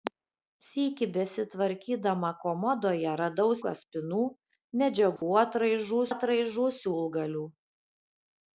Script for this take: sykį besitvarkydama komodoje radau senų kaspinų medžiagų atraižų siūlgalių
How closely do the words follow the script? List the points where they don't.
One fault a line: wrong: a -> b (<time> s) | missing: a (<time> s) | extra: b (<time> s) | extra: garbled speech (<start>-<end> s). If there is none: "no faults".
missing: senų (3.5 s)
extra: atraižų (6.1 s)